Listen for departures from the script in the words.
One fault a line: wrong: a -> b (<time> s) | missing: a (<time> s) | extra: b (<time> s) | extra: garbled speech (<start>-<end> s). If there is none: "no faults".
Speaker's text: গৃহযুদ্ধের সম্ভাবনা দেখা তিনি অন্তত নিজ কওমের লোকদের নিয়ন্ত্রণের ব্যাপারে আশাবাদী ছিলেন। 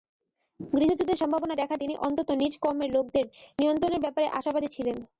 no faults